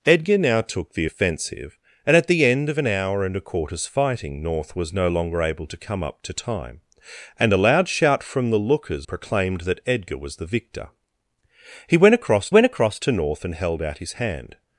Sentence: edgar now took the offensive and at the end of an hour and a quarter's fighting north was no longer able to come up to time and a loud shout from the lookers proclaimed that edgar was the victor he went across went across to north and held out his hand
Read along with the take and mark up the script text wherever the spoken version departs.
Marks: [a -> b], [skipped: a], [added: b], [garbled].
edgar now took the offensive and at the end of an hour and a quarter's fighting north was no longer able to come up to time and a loud shout from the lookers proclaimed that edgar was the victor he went across went across to north and held out his hand